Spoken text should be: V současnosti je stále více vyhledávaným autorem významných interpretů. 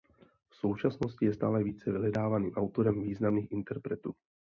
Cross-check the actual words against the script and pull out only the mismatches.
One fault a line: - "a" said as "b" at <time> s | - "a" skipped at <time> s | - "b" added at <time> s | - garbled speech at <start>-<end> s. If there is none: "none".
none